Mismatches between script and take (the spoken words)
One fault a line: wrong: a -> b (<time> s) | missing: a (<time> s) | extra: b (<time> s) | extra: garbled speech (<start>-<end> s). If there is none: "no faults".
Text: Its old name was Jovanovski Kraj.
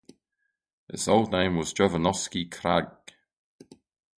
no faults